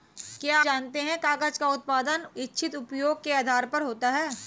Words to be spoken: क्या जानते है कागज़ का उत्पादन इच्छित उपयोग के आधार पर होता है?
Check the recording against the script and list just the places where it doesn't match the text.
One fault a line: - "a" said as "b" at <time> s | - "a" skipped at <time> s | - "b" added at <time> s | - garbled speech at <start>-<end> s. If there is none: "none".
none